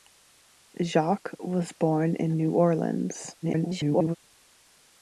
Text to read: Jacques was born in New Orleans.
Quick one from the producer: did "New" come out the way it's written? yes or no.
yes